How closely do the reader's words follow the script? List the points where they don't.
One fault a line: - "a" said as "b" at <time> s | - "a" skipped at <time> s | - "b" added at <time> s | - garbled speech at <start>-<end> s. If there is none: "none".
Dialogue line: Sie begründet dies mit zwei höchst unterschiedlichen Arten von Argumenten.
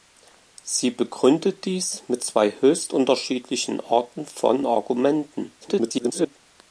- garbled speech at 5.6-6.4 s